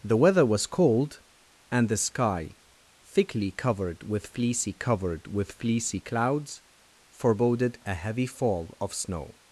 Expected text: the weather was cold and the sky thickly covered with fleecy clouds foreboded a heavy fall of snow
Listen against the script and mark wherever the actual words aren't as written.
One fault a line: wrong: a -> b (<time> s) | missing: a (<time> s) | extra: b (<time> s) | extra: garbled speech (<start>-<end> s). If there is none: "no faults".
extra: covered with fleecy (4.7 s)